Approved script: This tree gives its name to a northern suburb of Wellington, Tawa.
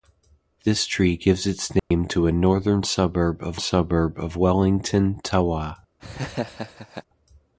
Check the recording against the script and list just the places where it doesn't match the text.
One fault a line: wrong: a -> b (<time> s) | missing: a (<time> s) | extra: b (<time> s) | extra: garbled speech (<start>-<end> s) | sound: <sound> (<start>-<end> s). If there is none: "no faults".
sound: dropout (1.8-1.9 s)
extra: suburb of (3.6 s)
sound: laugh (6.0-7.0 s)